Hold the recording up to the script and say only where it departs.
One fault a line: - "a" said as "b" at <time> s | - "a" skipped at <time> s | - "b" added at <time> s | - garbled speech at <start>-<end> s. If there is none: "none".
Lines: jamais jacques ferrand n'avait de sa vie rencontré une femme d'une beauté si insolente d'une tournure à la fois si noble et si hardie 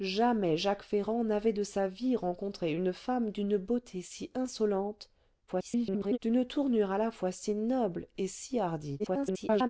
- garbled speech at 5.5-6.2 s
- garbled speech at 9.0-9.7 s